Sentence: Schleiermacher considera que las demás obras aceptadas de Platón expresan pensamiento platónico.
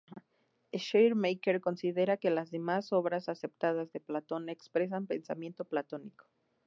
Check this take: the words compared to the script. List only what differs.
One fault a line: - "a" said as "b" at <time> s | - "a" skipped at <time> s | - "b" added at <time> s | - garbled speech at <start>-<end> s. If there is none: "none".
none